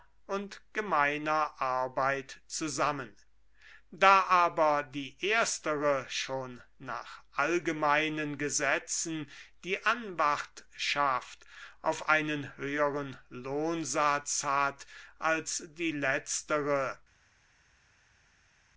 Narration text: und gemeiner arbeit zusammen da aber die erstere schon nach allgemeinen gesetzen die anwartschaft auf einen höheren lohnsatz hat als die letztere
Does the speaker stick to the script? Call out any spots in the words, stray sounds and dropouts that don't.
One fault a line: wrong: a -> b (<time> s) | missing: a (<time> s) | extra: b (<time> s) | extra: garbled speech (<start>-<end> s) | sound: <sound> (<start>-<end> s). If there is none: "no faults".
no faults